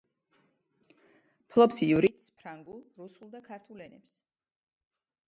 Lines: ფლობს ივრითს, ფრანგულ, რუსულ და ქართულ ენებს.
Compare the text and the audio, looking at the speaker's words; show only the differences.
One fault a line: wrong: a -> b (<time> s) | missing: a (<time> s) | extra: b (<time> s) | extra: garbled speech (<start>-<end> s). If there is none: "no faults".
no faults